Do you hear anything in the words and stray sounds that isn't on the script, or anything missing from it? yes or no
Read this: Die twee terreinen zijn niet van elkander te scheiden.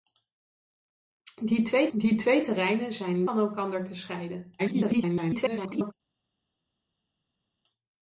yes